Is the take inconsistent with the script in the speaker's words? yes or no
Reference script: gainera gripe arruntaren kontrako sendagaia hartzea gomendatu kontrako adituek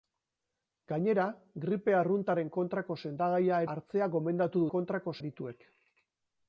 no